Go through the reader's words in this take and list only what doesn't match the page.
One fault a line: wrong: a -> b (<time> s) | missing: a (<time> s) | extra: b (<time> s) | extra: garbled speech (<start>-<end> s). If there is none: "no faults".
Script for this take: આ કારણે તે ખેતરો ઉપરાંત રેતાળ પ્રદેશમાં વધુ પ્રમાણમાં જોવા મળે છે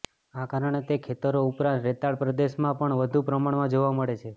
extra: પણ (2.8 s)